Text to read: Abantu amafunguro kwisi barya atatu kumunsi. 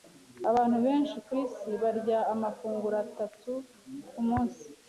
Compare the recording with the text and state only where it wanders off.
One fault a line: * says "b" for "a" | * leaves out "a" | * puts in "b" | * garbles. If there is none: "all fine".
* says "benshi" for "amafunguro"
* puts in "amafunguro"